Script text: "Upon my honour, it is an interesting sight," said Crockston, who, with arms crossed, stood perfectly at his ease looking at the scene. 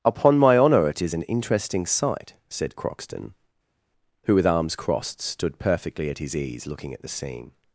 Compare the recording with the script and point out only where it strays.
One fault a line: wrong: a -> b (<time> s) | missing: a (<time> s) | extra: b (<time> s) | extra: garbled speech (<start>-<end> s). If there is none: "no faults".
no faults